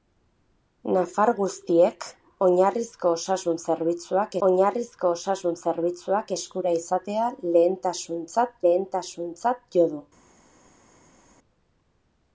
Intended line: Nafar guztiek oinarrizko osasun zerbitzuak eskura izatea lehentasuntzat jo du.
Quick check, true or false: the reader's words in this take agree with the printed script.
false